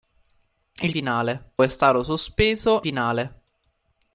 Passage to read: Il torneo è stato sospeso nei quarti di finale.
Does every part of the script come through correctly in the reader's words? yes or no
no